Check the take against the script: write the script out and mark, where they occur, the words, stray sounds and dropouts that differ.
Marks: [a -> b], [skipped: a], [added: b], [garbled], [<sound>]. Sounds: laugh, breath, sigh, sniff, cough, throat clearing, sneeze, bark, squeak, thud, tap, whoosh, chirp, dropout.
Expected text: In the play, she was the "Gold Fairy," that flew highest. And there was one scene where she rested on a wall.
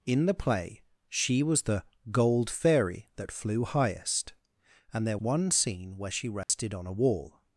In the play, she was the "Gold Fairy," that flew highest. And there [skipped: was] one scene where she rested [dropout] on a wall.